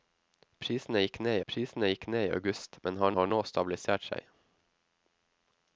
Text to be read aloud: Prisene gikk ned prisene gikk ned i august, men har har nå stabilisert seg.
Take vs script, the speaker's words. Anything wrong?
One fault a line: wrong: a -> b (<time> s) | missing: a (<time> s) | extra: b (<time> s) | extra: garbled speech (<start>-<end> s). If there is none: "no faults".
no faults